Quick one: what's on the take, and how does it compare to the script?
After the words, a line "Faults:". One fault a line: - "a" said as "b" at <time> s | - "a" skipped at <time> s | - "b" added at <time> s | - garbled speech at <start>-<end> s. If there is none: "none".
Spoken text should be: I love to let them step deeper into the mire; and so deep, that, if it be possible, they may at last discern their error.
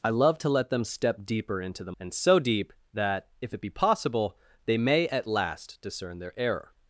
I love to let them step deeper into the; and so deep, that, if it be possible, they may at last discern their error.
Faults:
- "mire" skipped at 1.9 s